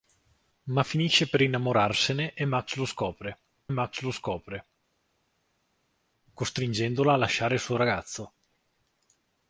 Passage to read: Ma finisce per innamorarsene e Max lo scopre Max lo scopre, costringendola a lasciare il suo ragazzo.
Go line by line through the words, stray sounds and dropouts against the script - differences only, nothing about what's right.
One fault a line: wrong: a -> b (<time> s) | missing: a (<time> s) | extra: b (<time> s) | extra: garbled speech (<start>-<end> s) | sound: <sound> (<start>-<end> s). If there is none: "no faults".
no faults